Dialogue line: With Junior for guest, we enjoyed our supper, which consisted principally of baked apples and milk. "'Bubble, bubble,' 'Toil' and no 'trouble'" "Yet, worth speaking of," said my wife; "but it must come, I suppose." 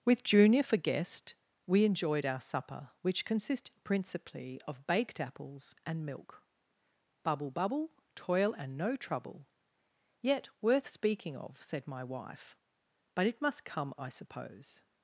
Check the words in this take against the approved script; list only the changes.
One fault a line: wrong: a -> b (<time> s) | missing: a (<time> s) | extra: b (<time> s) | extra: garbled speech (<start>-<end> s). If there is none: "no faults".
no faults